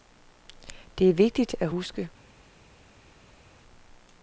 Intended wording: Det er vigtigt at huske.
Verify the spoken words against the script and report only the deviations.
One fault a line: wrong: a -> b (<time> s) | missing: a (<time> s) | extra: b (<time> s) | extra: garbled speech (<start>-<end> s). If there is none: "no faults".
no faults